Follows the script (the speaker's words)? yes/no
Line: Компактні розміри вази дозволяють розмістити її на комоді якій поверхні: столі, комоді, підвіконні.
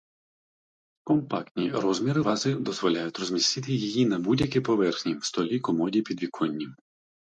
no